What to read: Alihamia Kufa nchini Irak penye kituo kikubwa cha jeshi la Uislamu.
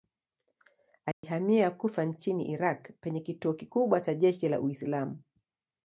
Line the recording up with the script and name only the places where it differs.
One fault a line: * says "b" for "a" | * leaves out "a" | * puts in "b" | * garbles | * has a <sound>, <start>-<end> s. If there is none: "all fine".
* has a dropout, 1.1-1.2 s